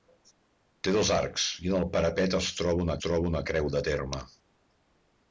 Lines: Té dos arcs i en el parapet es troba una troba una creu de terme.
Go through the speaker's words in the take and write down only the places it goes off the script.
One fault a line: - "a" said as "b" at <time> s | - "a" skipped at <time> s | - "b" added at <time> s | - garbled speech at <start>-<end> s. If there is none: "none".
none